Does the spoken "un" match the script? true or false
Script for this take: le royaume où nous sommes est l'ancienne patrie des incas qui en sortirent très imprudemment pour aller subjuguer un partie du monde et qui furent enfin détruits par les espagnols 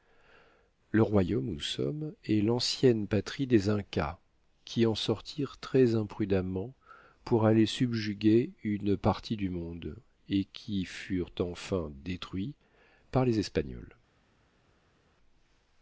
false